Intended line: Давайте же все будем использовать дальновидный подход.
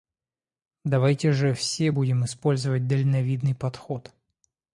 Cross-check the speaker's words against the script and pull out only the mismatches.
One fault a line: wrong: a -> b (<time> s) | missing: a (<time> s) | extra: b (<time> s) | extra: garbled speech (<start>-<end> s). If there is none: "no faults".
no faults